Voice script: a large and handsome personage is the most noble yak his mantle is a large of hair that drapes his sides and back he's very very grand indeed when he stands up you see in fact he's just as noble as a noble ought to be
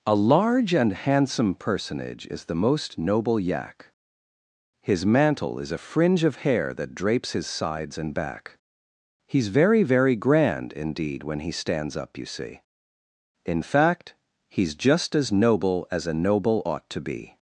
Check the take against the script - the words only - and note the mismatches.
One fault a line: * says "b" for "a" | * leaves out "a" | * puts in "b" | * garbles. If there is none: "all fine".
* says "fringe" for "large"